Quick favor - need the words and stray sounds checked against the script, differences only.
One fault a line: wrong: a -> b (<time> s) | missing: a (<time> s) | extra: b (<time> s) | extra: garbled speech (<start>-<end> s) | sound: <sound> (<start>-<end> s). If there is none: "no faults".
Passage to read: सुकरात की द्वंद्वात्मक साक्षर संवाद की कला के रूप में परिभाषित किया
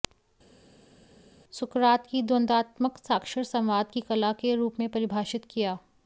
no faults